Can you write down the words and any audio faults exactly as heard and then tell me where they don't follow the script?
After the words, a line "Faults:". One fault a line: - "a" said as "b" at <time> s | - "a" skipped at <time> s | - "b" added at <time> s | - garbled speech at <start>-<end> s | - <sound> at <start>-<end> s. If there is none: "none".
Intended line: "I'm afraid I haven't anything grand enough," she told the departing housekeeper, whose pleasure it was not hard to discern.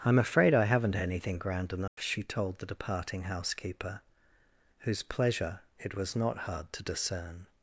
"I'm afraid I haven't anything grand enough," she told the departing housekeeper, whose pleasure it was not hard to discern.
Faults:
- dropout at 1.9-2.0 s